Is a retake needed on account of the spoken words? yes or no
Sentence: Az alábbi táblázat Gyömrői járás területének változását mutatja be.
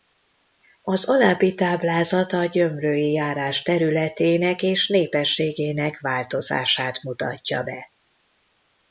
yes